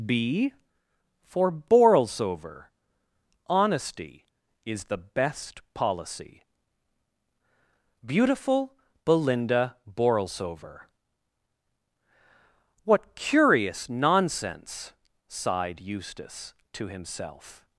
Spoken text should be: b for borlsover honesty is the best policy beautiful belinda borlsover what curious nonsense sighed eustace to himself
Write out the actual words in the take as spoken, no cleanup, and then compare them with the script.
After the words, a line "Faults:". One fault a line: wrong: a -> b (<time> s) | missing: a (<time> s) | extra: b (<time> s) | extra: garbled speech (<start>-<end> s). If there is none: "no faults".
b for borlsover honesty is the best policy beautiful belinda borlsover what curious nonsense sighed eustace to himself
Faults:
no faults